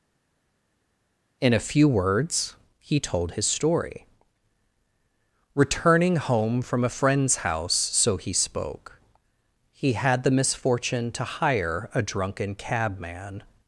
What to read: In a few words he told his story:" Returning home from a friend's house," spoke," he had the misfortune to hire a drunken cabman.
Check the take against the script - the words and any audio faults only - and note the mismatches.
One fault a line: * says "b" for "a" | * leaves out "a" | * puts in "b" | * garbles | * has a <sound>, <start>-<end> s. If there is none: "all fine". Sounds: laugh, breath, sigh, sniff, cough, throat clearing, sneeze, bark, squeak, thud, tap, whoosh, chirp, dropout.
* puts in "so he"